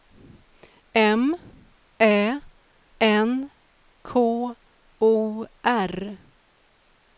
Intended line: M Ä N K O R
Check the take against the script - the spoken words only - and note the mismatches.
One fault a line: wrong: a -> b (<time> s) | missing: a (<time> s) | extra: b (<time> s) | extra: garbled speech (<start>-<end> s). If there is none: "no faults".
no faults